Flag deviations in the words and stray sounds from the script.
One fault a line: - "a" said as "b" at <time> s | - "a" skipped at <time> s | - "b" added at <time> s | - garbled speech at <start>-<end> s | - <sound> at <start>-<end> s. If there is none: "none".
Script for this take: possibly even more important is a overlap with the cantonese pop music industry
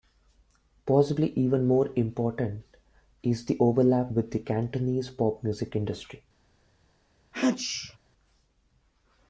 - "a" said as "the" at 3.5 s
- sneeze at 7.3-8.0 s